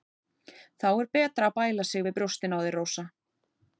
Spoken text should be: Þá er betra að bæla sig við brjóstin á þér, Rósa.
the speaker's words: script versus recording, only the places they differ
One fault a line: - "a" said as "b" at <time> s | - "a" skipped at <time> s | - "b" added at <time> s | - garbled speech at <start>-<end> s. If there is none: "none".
none